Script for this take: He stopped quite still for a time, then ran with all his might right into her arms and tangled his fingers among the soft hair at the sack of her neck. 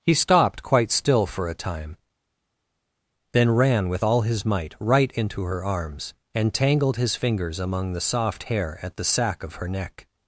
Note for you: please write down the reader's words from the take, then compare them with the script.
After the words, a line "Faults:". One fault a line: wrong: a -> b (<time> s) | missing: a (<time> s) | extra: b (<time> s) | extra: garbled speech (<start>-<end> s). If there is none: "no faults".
He stopped quite still for a time, then ran with all his might right into her arms and tangled his fingers among the soft hair at the sack of her neck.
Faults:
no faults